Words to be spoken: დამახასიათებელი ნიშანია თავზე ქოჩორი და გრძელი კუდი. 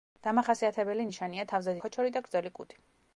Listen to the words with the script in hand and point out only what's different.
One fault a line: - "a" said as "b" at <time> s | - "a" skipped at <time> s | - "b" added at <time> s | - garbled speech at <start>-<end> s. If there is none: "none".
none